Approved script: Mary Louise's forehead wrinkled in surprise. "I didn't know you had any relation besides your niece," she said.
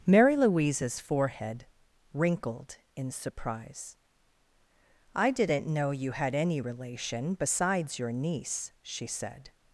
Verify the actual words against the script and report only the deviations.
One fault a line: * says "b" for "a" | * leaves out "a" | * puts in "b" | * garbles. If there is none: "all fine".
all fine